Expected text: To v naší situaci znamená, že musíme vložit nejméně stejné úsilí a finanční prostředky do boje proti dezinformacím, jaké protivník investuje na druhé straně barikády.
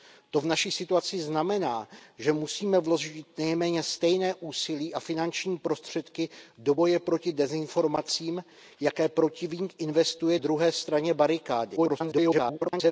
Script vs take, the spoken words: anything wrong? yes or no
yes